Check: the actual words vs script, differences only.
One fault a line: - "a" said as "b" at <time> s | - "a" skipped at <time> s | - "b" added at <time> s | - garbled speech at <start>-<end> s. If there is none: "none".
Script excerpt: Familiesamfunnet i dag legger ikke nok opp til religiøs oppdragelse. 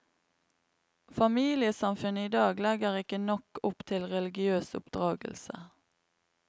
none